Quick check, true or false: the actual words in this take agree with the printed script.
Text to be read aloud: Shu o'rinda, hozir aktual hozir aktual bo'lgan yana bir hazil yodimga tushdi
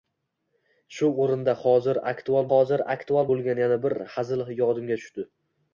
true